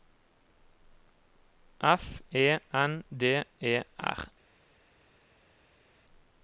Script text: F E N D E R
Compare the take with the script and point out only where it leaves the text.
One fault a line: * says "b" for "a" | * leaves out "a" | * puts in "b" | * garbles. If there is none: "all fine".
all fine